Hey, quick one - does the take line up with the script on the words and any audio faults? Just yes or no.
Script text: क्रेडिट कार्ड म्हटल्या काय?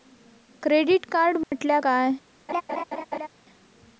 no